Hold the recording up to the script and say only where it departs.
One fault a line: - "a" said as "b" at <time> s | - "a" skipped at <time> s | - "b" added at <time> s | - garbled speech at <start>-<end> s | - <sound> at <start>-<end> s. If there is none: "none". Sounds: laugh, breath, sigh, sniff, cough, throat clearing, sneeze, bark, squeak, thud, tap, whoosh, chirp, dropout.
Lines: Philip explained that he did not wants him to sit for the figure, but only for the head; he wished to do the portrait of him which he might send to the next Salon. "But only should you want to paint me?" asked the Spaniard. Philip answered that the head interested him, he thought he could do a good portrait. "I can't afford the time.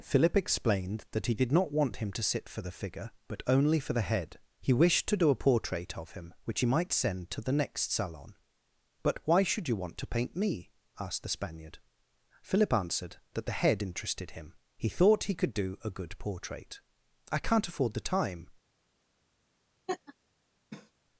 - "wants" said as "want" at 1.7 s
- "the" said as "a" at 5.3 s
- "only" said as "why" at 9.2 s
- laugh at 19.9-20.1 s
- cough at 20.7-20.9 s